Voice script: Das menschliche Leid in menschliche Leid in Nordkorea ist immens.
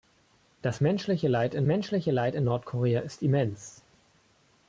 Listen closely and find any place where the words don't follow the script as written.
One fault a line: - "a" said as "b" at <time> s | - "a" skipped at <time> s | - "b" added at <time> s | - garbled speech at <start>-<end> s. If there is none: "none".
none